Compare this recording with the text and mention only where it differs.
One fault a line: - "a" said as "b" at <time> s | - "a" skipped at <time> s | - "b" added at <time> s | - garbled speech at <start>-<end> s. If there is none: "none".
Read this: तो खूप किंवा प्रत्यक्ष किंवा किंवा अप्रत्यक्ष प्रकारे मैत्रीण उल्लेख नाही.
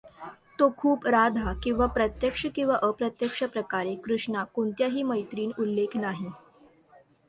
- "राधा" added at 1.1 s
- "किंवा" skipped at 2.8 s
- "कृष्णा कोणत्याही" added at 4.0 s